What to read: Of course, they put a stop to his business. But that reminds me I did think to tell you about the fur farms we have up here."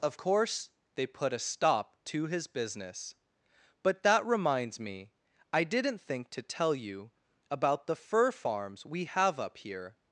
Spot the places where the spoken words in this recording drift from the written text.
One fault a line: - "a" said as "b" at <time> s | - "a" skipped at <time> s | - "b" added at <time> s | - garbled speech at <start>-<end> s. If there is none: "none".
- "did" said as "didn't" at 5.6 s